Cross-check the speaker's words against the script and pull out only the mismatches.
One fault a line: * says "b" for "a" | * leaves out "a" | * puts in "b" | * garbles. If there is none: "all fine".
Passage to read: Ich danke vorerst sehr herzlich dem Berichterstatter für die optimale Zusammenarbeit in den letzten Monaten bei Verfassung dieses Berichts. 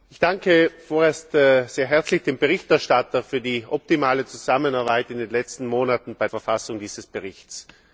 all fine